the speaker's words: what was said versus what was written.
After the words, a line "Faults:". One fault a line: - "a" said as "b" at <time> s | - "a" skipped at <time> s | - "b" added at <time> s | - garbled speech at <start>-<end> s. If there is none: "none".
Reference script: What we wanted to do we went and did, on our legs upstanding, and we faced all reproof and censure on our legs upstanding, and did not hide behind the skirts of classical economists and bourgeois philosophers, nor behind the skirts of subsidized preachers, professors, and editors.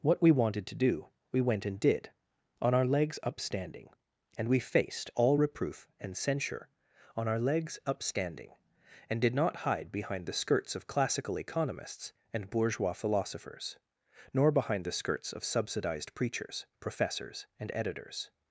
What we wanted to do we went and did, on our legs upstanding, and we faced all reproof and censure on our legs upstanding, and did not hide behind the skirts of classical economists and bourgeois philosophers, nor behind the skirts of subsidized preachers, professors, and editors.
Faults:
none